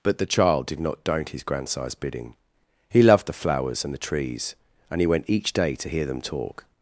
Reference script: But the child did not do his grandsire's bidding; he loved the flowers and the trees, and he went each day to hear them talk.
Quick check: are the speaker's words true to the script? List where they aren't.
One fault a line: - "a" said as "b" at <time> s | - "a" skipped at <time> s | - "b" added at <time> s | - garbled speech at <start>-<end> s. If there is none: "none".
- "do" said as "don't" at 1.0 s